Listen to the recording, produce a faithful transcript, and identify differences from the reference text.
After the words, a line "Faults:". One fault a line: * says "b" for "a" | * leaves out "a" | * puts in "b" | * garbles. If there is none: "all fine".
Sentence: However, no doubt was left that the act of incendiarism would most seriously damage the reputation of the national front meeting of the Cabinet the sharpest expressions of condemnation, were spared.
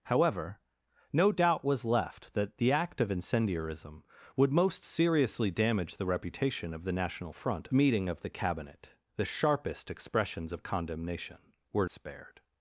However, no doubt was left that the act of incendiarism would most seriously damage the reputation of the national front meeting of the Cabinet the sharpest expressions of condemnation, were spared.
Faults:
all fine